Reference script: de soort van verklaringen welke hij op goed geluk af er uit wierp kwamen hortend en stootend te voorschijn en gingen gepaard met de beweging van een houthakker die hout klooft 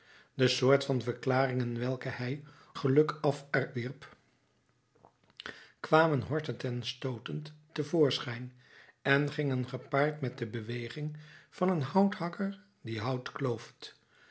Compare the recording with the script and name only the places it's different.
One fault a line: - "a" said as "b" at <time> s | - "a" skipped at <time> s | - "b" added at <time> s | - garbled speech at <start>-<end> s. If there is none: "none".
- "op goed" skipped at 2.4 s
- "uit" skipped at 3.7 s